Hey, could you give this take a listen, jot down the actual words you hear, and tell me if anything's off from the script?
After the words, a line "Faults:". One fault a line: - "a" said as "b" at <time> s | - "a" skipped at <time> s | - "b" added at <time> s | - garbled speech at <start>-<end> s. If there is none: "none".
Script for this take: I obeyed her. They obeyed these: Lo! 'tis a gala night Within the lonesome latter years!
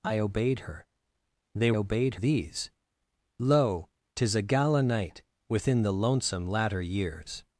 I obeyed her. They obeyed these: Lo! 'tis a gala night Within the lonesome latter years!
Faults:
none